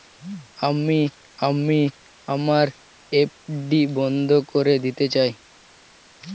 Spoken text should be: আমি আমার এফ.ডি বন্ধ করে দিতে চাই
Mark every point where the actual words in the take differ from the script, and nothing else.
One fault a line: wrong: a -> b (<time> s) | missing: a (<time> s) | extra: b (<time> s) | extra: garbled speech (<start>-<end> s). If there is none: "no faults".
extra: আমি (1.5 s)